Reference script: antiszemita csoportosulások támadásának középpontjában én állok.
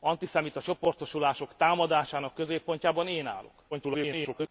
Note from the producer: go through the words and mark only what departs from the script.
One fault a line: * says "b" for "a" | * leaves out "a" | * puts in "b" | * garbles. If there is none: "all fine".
* garbles